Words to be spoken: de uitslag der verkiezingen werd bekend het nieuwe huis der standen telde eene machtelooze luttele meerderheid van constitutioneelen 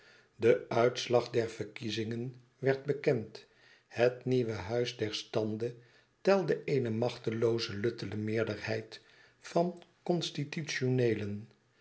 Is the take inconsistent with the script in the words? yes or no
no